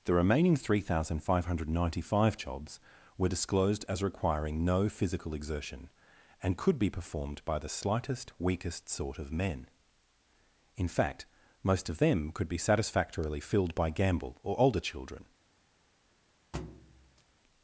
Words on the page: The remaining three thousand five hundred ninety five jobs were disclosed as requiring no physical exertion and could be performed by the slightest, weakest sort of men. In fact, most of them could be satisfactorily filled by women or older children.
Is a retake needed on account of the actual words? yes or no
yes